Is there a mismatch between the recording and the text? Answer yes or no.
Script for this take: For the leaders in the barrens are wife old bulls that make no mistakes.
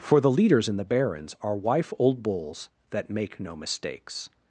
no